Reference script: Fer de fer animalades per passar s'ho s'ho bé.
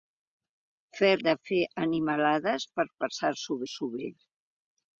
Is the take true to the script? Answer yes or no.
yes